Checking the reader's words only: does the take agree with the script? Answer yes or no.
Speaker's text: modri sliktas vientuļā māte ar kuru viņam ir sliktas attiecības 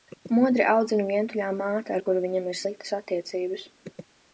no